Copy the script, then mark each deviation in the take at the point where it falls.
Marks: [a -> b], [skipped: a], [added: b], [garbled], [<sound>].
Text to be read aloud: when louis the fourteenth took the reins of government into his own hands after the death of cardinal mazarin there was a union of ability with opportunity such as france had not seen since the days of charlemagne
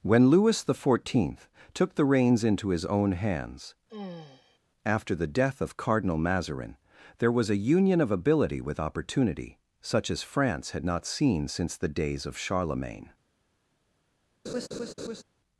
when louis the fourteenth took the reins [skipped: of government] into his own hands [sigh] after the death of cardinal mazarin there was a union of ability with opportunity such as france had not seen since the days of charlemagne [laugh]